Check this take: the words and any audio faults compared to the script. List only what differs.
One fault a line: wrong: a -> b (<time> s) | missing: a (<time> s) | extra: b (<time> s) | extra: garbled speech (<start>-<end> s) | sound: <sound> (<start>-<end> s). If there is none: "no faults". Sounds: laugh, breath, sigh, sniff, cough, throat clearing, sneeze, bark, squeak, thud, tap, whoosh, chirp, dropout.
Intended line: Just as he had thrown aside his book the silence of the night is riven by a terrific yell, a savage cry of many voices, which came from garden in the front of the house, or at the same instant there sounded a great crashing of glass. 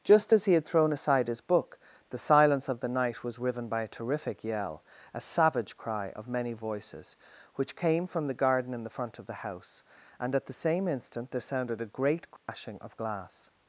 wrong: is -> was (3.2 s)
extra: the (8.3 s)
wrong: or -> and (10.2 s)
sound: dropout (12.4-12.5 s)